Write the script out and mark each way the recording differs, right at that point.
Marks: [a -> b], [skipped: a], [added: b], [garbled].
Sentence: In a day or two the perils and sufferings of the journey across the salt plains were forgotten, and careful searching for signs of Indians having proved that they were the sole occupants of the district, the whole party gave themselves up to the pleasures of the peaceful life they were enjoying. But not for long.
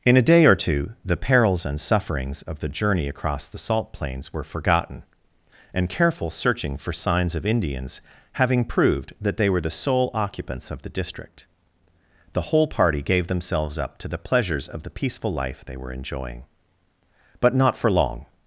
In a day or two the perils and sufferings of the journey across the salt plains were forgotten, and careful searching for signs of Indians having proved that they were the sole occupants of the district, the whole party gave themselves up to the pleasures of the peaceful life they were enjoying. But not for long.